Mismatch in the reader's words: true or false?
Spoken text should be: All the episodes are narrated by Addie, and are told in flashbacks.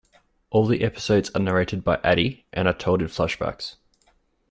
false